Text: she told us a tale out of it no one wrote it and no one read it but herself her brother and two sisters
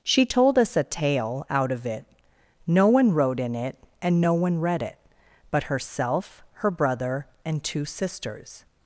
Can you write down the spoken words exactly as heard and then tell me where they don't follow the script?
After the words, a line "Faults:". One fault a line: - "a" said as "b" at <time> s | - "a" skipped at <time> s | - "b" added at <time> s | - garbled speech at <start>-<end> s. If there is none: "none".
she told us a tale out of it no one wrote in it and no one read it but herself her brother and two sisters
Faults:
- "in" added at 3.4 s